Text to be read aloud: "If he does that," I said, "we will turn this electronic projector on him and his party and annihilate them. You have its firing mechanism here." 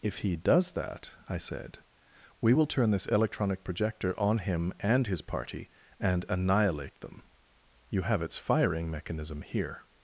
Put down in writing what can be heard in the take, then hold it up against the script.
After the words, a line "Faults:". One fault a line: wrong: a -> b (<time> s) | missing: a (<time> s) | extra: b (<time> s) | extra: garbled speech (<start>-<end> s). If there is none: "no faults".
"If he does that," I said, "we will turn this electronic projector on him and his party and annihilate them. You have its firing mechanism here."
Faults:
no faults